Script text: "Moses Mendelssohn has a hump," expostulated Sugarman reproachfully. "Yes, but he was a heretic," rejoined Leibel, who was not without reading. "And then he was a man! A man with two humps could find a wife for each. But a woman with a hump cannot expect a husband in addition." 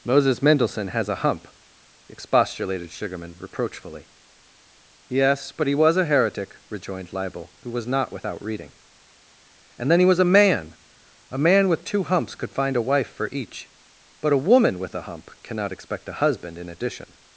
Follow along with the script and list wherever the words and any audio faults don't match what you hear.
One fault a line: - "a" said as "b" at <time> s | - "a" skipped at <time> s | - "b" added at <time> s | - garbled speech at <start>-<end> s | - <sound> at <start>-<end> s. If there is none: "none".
none